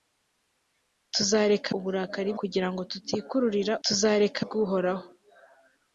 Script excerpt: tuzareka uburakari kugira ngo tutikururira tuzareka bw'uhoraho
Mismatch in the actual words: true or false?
false